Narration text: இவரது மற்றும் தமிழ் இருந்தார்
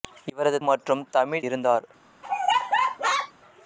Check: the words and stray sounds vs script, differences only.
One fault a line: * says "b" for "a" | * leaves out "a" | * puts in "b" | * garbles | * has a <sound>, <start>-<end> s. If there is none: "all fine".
* has a laugh, 2.2-3.3 s